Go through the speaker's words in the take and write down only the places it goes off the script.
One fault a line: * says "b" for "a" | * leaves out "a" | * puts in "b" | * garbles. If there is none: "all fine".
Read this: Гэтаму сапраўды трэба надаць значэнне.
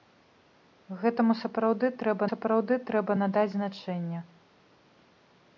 * puts in "сапраўды трэба"